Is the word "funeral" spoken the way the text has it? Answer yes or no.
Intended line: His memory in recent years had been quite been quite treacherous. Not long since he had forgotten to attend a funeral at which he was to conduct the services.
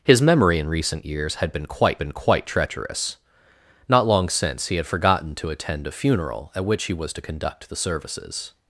yes